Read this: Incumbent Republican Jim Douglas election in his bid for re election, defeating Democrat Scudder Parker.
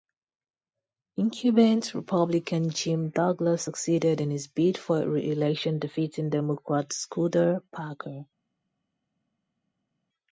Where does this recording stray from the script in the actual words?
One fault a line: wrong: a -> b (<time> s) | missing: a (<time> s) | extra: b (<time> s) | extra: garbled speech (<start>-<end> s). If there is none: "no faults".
wrong: election -> succeeded (3.6 s)